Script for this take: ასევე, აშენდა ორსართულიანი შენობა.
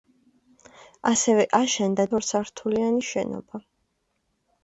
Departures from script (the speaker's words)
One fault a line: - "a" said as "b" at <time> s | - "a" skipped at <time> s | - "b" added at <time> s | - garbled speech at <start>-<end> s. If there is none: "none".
none